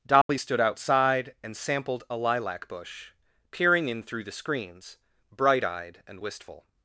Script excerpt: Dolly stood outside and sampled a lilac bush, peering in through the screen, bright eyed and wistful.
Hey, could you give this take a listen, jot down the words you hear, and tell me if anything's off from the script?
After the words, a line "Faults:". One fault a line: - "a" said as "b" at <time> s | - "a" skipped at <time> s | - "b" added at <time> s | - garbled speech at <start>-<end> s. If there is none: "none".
Dolly stood outside and sampled a lilac bush, peering in through the screens, bright eyed and wistful.
Faults:
- "screen" said as "screens" at 4.3 s